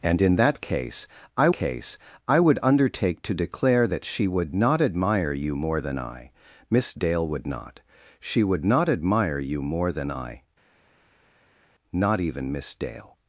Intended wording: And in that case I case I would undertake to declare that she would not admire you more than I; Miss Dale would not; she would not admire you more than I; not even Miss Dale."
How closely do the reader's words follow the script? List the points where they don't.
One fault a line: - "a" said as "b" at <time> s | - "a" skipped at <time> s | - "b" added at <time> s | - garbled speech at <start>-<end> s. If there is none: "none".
none